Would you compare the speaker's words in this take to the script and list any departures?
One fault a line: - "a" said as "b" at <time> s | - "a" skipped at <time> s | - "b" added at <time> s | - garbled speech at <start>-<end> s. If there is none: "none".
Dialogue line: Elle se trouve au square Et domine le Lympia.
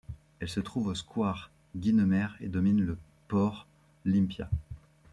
- "Guynemer" added at 1.7 s
- "port" added at 3.3 s